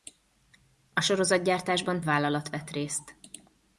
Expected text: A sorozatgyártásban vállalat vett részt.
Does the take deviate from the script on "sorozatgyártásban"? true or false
false